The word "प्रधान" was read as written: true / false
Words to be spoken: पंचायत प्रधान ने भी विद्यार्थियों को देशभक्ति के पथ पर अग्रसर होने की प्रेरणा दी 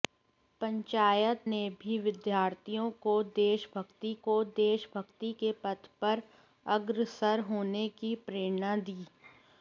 false